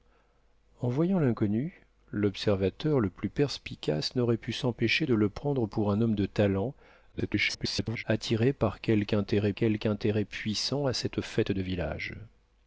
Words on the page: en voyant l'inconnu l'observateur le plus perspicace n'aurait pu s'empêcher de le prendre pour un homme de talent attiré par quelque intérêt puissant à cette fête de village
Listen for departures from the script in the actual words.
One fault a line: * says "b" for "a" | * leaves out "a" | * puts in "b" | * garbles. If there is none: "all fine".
* garbles
* puts in "quelque intérêt"